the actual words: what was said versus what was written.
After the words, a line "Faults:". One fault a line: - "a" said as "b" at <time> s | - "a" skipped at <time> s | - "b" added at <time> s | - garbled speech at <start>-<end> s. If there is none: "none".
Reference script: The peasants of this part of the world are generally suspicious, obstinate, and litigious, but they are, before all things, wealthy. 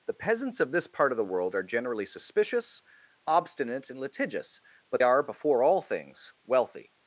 The peasants of this part of the world are generally suspicious, obstinate, and litigious, but are, before all things, wealthy.
Faults:
- "they" skipped at 5.0 s